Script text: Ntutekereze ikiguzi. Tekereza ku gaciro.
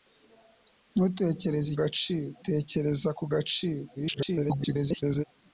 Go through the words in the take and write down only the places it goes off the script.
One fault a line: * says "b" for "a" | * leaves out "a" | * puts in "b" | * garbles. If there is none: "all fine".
* says "gaciro" for "ikiguzi"
* garbles